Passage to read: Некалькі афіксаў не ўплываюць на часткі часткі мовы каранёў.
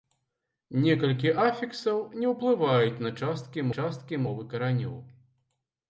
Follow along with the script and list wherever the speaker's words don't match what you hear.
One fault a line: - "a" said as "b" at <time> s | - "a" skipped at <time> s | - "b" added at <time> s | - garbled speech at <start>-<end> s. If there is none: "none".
none